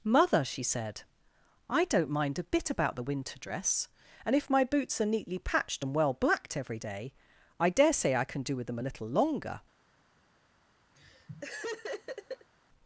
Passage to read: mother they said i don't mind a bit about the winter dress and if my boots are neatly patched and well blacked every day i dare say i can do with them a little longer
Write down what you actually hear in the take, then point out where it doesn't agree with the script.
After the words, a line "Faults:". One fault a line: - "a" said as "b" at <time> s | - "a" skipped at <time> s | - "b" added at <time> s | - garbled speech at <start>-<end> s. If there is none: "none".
mother she said i don't mind a bit about the winter dress and if my boots are neatly patched and well blacked every day i dare say i can do with them a little longer
Faults:
- "they" said as "she" at 0.4 s